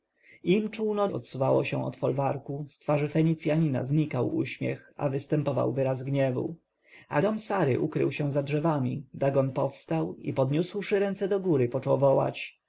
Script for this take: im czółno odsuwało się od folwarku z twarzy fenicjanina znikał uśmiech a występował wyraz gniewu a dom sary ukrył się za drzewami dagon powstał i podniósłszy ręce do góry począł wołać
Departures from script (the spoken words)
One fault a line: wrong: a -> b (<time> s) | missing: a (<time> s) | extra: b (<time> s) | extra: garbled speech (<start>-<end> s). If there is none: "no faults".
no faults